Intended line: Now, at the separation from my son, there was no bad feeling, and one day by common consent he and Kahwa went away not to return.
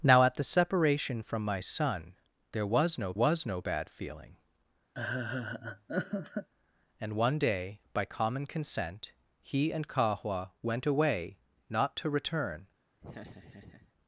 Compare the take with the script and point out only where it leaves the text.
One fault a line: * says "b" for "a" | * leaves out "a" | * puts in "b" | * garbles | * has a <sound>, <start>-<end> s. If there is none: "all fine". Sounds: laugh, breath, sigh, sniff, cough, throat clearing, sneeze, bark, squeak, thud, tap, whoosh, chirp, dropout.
* puts in "was no"
* has a laugh, 4.9-6.5 s
* has a laugh, 13.0-13.9 s